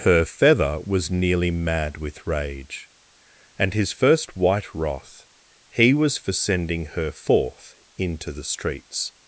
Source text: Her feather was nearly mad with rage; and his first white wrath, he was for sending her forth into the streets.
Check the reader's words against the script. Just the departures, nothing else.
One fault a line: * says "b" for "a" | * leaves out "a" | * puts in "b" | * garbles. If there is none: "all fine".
all fine